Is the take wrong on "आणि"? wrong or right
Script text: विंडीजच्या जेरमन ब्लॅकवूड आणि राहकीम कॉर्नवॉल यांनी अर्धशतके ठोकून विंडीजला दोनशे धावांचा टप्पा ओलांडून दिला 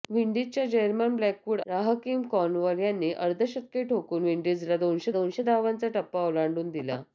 wrong